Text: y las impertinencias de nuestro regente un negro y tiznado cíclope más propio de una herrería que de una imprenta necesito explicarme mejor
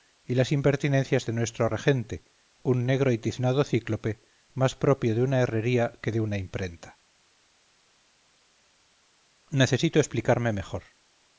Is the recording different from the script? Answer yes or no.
no